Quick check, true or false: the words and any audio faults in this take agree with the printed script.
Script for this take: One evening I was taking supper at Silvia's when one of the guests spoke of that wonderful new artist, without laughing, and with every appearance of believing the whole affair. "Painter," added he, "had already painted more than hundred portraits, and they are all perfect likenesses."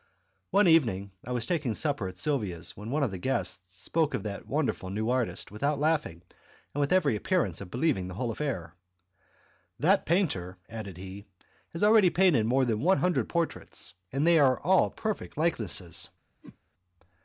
false